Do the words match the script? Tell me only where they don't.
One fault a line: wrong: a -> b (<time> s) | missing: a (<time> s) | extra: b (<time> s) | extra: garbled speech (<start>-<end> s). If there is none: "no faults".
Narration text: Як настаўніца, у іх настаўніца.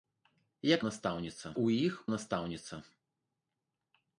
no faults